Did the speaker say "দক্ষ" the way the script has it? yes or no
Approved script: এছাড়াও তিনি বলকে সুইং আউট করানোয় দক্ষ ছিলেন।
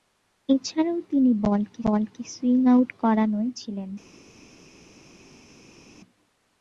no